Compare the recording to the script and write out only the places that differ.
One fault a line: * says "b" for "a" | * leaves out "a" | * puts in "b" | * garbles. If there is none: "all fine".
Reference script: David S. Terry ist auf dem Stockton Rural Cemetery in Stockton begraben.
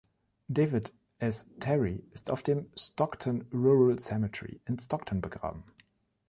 all fine